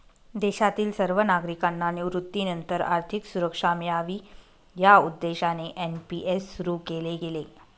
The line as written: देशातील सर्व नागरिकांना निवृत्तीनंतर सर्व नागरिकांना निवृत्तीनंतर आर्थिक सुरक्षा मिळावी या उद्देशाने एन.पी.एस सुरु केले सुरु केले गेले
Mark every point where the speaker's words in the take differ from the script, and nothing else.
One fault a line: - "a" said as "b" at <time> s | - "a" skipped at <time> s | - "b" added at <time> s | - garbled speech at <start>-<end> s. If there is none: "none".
- "सर्व नागरिकांना निवृत्तीनंतर" skipped at 2.8 s
- "सुरु केले" skipped at 7.2 s